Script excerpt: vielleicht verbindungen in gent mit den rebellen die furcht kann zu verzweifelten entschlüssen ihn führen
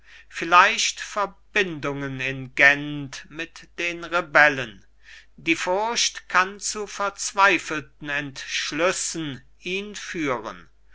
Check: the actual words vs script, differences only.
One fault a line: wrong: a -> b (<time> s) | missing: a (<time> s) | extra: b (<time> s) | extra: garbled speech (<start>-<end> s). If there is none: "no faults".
no faults